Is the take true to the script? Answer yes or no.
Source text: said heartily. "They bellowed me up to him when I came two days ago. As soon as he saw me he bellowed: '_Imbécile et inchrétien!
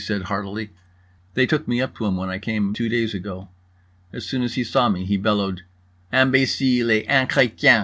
no